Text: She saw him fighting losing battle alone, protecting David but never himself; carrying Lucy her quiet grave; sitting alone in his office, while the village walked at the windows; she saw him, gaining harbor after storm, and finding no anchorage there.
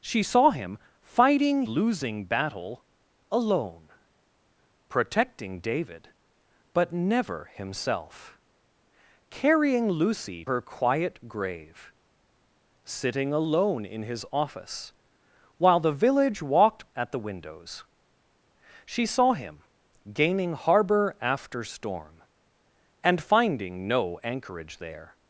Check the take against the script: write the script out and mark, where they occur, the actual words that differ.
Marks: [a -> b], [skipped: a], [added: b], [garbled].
She saw him fighting losing battle alone, protecting David but never himself; carrying Lucy her quiet grave; sitting alone in his office, while the village walked at the windows; she saw him, gaining harbor after storm, and finding no anchorage there.